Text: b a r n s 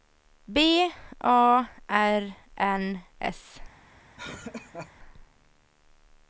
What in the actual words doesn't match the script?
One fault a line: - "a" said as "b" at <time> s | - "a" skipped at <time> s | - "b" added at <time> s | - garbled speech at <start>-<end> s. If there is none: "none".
none